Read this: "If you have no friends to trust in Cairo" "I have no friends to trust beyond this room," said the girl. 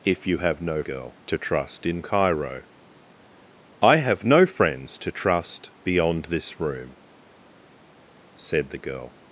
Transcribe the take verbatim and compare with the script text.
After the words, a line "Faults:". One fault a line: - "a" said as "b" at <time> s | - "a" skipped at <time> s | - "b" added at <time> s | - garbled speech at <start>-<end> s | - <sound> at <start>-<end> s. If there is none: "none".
"If you have no girl to trust in Cairo" "I have no friends to trust beyond this room," said the girl.
Faults:
- "friends" said as "girl" at 0.8 s